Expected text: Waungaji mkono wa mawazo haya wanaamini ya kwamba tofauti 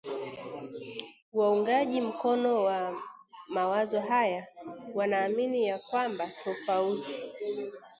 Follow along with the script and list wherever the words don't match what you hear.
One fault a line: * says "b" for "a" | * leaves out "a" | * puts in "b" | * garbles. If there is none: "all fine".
all fine